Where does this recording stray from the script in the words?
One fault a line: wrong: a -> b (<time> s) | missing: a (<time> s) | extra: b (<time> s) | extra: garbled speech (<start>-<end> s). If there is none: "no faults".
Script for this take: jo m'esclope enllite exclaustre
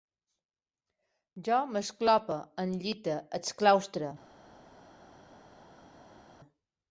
no faults